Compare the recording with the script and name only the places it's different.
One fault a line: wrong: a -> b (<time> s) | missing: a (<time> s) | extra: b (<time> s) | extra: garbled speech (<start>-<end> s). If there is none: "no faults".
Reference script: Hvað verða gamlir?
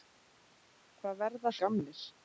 no faults